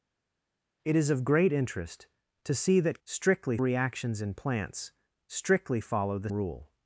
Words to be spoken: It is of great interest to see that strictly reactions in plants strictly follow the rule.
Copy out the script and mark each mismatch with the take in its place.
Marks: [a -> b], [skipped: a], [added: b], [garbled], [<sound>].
It is of great interest to see that strictly reactions in plants strictly follow the rule.